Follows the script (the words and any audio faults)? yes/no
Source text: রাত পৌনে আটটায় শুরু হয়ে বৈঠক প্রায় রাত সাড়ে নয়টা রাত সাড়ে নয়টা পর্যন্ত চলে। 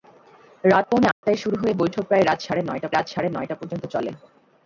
no